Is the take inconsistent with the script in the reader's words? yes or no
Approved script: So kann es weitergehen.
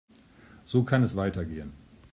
no